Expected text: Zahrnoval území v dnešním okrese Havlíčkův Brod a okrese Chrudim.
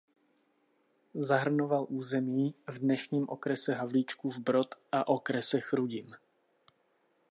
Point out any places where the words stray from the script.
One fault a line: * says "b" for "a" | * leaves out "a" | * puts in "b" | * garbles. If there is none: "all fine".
all fine